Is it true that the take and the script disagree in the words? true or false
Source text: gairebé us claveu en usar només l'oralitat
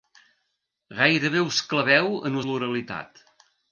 true